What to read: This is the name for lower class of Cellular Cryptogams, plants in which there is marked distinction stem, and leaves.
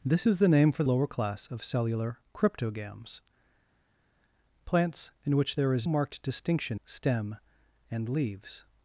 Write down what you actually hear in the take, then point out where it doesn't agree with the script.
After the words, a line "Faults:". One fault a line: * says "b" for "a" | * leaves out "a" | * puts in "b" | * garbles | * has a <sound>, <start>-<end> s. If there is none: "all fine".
This is the name for lower class of Cellular Cryptogams, plants in which there is marked distinction stem, and leaves.
Faults:
all fine